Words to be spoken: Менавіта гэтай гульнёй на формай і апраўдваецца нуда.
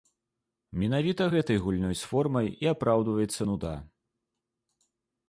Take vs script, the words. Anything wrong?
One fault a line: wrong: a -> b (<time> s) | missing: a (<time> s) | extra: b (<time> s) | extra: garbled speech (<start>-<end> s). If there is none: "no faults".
wrong: на -> з (2.0 s)